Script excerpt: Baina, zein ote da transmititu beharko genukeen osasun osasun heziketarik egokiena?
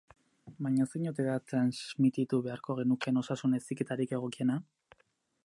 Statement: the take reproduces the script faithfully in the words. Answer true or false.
false